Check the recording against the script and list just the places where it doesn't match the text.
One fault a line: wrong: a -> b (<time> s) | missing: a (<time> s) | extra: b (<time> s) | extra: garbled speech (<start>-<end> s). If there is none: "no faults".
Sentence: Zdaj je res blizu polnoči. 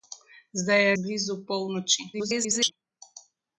missing: res (0.9 s)
extra: garbled speech (2.1-2.7 s)